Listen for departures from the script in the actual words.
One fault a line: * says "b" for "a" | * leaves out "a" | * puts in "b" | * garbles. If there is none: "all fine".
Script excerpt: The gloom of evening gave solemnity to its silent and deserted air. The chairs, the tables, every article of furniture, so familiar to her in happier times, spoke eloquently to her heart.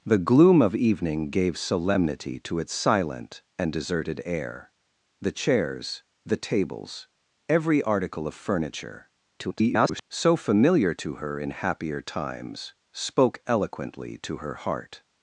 * garbles